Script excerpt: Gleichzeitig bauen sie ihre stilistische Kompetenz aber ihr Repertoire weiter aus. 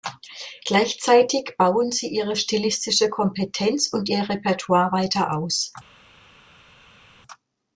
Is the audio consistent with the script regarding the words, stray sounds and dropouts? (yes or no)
no